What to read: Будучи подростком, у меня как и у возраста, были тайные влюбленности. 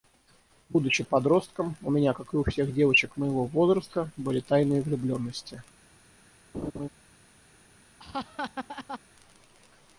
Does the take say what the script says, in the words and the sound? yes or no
no